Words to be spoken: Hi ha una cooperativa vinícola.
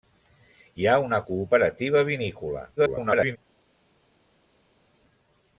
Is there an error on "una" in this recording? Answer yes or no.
no